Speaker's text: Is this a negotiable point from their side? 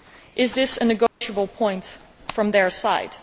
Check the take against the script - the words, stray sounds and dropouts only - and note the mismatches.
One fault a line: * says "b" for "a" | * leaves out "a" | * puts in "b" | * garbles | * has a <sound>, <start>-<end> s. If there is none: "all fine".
* has a dropout, 1.1-1.2 s